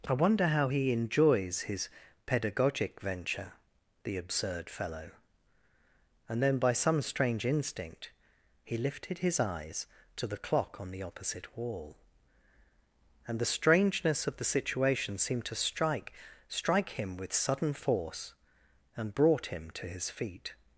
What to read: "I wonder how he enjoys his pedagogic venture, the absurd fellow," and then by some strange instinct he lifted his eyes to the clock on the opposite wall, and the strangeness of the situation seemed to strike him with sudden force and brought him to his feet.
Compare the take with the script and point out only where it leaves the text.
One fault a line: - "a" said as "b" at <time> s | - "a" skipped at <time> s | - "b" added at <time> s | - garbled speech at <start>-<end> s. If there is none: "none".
- "strike" added at 16.5 s